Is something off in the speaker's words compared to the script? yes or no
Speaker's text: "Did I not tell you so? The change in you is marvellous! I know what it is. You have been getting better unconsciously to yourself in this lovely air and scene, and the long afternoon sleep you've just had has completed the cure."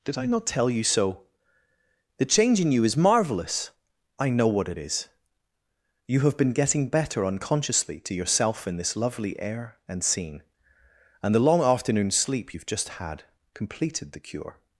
yes